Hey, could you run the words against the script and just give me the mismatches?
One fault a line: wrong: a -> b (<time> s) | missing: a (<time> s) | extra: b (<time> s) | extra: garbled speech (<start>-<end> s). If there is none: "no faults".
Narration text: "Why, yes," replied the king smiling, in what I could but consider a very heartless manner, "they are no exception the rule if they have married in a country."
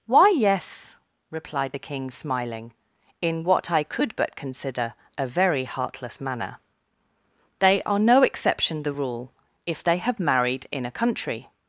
no faults